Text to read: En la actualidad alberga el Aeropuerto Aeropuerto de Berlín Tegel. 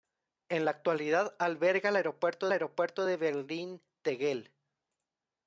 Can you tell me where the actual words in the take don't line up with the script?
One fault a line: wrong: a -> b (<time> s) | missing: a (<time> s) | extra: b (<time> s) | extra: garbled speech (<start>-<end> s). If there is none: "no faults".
no faults